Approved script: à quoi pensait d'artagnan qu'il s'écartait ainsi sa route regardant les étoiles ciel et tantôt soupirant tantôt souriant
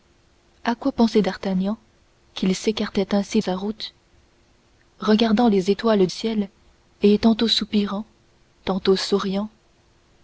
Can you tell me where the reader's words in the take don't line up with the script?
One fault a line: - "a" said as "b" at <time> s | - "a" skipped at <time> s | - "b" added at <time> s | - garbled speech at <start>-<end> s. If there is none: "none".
none